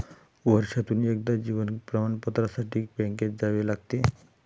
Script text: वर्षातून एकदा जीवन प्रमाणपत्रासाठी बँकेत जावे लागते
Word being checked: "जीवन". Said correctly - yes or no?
yes